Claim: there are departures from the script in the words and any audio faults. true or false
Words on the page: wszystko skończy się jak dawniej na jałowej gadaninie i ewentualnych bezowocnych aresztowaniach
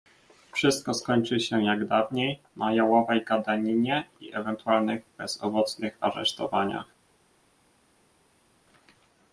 false